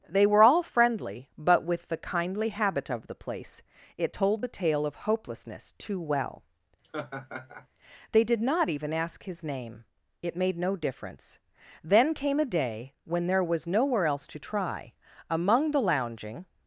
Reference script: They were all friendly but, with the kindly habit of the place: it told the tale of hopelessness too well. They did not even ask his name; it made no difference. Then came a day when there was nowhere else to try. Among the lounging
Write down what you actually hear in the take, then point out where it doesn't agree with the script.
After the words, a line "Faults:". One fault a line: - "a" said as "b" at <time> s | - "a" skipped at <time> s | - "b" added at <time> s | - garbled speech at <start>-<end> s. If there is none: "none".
They were all friendly but, with the kindly habit of the place: it told the tale of hopelessness too well. They did not even ask his name; it made no difference. Then came a day when there was nowhere else to try. Among the lounging
Faults:
none